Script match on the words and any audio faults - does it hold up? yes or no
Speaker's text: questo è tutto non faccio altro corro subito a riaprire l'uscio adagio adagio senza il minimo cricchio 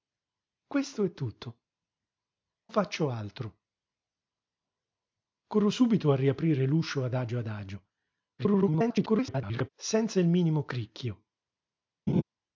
no